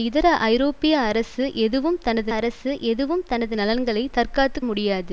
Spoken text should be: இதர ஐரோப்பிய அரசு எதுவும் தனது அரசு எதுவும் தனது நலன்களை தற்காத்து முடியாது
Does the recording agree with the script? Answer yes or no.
yes